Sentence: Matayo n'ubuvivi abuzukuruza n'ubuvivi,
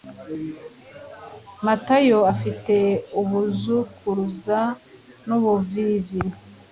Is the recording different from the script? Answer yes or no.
yes